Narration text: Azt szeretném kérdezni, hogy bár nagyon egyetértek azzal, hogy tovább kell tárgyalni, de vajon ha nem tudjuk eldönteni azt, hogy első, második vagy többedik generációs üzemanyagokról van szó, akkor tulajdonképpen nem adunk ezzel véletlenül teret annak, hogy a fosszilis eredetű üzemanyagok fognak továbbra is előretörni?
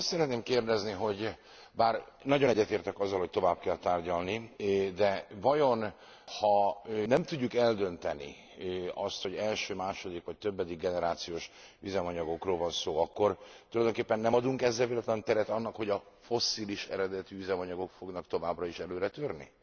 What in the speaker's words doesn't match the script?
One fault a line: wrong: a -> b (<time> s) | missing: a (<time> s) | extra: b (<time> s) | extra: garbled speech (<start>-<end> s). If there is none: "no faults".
no faults